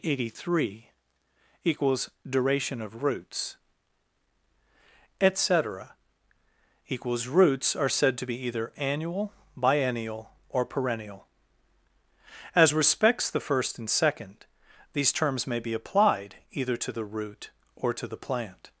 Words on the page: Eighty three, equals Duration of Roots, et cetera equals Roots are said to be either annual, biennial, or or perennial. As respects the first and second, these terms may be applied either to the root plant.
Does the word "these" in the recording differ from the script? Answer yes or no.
no